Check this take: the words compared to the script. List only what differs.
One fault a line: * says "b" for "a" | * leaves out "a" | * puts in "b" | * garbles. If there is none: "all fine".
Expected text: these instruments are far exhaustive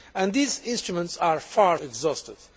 all fine